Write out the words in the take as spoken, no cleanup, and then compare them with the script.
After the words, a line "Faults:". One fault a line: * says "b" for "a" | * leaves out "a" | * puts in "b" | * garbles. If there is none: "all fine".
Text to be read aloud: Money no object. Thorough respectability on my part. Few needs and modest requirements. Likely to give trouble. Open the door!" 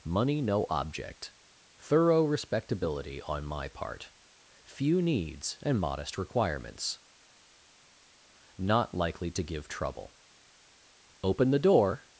Money no object. Thorough respectability on my part. Few needs and modest requirements. Not likely to give trouble. Open the door!"
Faults:
* puts in "Not"